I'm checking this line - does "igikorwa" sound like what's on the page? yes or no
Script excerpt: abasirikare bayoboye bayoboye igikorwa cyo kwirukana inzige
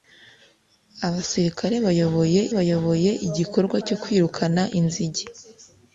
yes